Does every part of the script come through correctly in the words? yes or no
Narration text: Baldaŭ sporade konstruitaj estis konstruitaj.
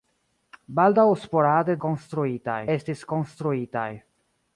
yes